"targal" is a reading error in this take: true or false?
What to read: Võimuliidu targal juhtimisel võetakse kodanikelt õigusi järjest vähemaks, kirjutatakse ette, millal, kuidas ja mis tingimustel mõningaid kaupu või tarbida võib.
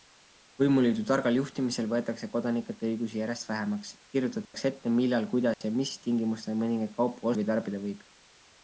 false